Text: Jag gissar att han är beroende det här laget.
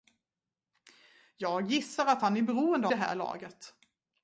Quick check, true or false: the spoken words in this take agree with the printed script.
true